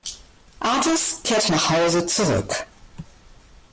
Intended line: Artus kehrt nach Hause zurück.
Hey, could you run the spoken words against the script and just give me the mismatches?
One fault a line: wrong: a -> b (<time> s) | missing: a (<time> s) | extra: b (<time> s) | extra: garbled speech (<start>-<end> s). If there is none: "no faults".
no faults